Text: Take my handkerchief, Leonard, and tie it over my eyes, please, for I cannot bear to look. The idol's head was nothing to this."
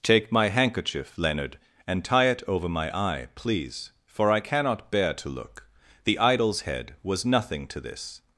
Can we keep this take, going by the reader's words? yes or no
no